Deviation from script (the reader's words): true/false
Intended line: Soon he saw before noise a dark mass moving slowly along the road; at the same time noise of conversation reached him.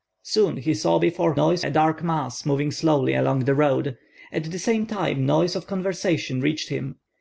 false